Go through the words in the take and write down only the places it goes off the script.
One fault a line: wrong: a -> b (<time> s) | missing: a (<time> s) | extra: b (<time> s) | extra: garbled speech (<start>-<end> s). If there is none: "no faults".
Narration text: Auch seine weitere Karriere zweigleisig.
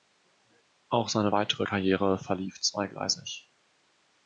extra: verlief (2.2 s)